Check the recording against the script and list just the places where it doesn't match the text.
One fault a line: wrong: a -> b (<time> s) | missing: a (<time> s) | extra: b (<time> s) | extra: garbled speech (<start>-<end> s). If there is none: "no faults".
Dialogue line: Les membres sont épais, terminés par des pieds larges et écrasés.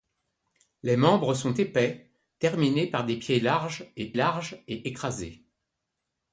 extra: larges et (4.1 s)